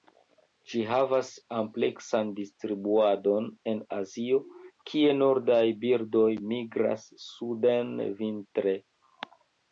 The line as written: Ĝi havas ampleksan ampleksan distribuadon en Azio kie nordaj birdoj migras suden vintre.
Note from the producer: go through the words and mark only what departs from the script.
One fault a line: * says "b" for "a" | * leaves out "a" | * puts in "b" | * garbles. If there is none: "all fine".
* leaves out "ampleksan"